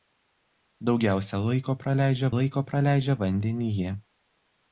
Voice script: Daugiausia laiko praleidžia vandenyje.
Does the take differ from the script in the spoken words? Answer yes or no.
yes